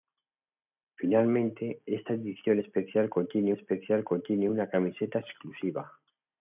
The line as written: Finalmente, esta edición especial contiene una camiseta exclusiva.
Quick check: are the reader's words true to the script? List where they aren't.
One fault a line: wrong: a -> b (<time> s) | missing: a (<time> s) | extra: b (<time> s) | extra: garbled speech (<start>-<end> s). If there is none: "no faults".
extra: especial contiene (3.5 s)